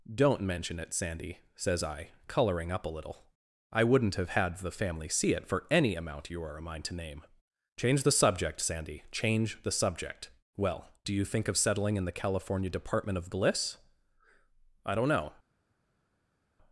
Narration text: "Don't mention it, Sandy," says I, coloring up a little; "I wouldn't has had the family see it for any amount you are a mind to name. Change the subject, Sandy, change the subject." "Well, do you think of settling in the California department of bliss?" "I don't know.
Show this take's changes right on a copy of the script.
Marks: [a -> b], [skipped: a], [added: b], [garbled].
"Don't mention it, Sandy," says I, coloring up a little; "I wouldn't [has -> have] had the family see it for any amount you are a mind to name. Change the subject, Sandy, change the subject." "Well, do you think of settling in the California department of bliss?" "I don't know.